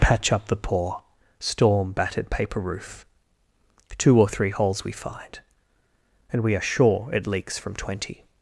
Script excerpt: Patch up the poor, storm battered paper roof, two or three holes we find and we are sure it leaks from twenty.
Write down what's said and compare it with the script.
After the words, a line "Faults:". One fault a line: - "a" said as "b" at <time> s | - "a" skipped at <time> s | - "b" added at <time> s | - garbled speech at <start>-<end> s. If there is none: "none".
Patch up the poor, storm battered paper roof, two or three holes we find and we are sure it leaks from twenty.
Faults:
none